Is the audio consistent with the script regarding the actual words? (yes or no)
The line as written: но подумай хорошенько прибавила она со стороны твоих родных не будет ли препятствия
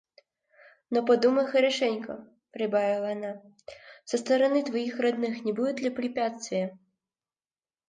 yes